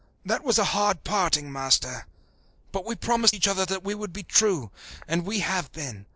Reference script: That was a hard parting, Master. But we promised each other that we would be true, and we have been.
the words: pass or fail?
pass